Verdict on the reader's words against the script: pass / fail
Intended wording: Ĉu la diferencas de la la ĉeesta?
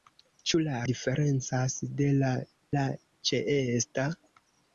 pass